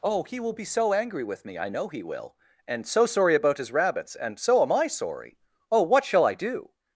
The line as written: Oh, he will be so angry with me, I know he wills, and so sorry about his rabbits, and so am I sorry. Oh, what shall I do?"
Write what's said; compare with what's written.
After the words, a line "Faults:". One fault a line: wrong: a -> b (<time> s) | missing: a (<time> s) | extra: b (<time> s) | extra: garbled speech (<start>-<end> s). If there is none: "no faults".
Oh, he will be so angry with me, I know he will, and so sorry about his rabbits, and so am I sorry. Oh, what shall I do?"
Faults:
wrong: wills -> will (2.0 s)